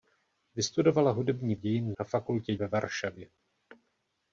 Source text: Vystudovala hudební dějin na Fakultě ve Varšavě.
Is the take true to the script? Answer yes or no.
yes